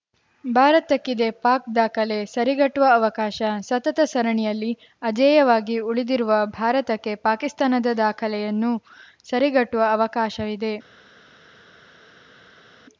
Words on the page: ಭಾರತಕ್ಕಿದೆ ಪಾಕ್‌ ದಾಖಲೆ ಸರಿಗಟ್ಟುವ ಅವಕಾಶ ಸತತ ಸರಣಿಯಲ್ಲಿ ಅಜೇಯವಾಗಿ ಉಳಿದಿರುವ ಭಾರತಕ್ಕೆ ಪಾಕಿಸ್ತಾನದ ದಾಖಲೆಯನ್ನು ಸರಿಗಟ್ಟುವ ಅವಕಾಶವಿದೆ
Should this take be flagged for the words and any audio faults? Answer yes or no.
no